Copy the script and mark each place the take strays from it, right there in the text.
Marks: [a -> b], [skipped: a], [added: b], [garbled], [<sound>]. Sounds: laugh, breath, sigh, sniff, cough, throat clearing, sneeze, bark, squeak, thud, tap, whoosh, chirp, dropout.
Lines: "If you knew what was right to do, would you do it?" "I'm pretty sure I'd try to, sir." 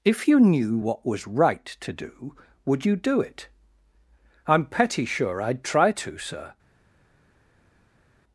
"If you knew what was right to do, would you do it?" "I'm [pretty -> petty] sure I'd try to, sir."